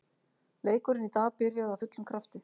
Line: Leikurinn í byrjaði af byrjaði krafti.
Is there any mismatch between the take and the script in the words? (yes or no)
yes